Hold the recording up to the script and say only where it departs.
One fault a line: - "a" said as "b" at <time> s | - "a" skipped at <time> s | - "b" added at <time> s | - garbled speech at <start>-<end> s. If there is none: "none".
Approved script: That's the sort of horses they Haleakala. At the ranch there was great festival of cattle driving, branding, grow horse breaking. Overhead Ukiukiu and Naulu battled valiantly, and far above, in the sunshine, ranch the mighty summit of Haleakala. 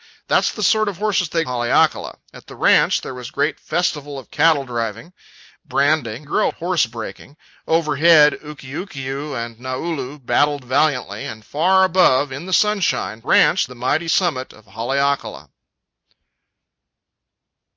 none